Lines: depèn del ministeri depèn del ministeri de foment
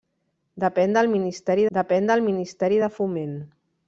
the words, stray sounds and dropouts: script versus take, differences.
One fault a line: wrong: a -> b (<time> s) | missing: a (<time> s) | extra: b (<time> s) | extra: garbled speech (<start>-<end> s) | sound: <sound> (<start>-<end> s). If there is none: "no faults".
no faults